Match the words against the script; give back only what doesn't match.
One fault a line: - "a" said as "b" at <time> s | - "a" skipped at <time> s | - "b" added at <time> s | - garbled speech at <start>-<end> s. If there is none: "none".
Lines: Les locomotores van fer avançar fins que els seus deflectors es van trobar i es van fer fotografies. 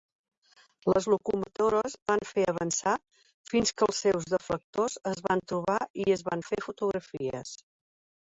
none